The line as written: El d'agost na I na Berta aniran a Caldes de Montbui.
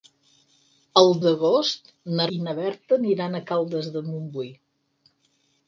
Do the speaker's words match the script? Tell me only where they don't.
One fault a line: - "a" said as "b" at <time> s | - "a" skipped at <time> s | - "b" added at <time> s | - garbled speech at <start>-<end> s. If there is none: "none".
none